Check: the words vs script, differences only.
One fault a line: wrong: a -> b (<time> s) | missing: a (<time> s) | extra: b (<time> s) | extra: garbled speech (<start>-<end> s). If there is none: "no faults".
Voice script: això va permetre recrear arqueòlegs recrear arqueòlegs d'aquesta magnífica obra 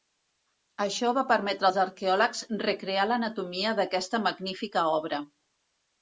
wrong: recrear -> als (1.6 s)
wrong: arqueòlegs -> l'anatomia (3.1 s)